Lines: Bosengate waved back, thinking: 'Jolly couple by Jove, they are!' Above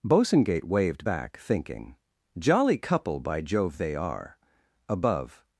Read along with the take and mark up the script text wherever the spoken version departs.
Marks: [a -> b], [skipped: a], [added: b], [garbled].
Bosengate waved back, thinking: 'Jolly couple by Jove, they are!' Above